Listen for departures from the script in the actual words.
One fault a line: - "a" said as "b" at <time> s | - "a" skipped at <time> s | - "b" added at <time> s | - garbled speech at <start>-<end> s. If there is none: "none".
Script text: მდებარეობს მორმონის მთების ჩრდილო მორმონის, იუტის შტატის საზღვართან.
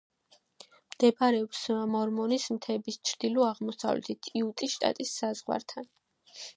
- "მორმონის" said as "აღმოსავლეთით" at 3.5 s